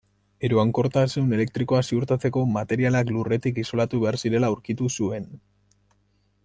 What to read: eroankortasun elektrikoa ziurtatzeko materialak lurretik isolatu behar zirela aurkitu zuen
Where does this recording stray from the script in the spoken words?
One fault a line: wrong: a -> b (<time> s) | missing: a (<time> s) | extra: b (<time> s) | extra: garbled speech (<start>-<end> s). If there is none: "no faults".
no faults